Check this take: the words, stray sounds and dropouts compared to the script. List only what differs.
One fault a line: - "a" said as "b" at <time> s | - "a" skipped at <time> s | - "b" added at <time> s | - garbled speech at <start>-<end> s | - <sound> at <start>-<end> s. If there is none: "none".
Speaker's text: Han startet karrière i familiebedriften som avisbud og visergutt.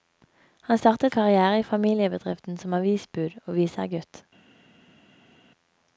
none